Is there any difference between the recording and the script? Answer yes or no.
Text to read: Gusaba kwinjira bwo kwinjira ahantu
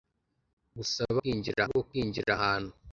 no